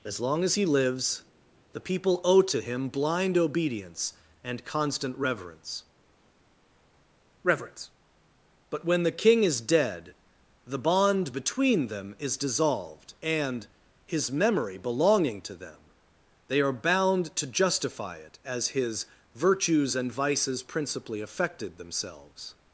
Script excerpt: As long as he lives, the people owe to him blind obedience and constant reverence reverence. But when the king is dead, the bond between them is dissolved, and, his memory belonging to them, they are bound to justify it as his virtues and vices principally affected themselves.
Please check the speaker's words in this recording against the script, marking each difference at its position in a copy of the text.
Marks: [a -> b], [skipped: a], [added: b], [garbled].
As long as he lives, the people owe to him blind obedience and constant reverence reverence. But when the king is dead, the bond between them is dissolved, and, his memory belonging to them, they are bound to justify it as his virtues and vices principally affected themselves.